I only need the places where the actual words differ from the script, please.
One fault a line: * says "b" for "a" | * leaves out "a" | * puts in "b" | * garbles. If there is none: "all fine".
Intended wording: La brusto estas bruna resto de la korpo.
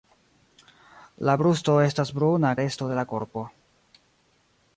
all fine